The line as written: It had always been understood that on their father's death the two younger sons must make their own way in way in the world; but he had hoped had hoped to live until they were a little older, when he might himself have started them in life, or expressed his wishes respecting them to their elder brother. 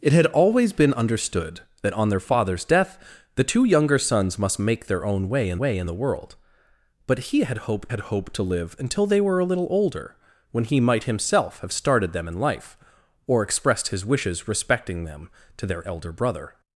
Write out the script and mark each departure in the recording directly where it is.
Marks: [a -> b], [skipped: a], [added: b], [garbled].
It had always been understood that on their father's death the two younger sons must make their own way in way in the world; but he had hoped had hoped to live until they were a little older, when he might himself have started them in life, or expressed his wishes respecting them to their elder brother.